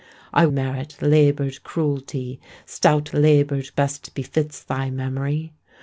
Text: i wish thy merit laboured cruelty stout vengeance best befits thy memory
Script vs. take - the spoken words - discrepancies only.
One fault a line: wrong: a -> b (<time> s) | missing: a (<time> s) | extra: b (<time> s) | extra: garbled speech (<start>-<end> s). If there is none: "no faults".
missing: wish thy (0.5 s)
wrong: vengeance -> laboured (3.1 s)